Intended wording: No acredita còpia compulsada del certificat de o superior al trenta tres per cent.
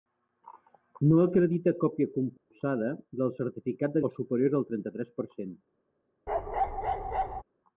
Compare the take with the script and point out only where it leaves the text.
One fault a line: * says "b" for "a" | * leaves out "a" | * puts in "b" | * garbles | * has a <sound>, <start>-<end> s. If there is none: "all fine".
* has a dropout, 2.4-2.5 s
* has a bark, 6.3-7.4 s